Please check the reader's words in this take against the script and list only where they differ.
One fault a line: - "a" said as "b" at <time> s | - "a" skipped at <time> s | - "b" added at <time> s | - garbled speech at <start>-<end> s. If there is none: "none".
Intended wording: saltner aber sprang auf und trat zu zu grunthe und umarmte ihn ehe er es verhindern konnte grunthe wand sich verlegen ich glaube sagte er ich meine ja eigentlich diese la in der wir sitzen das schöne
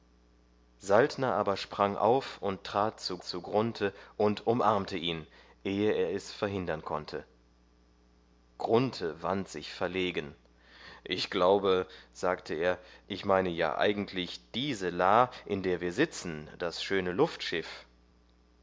none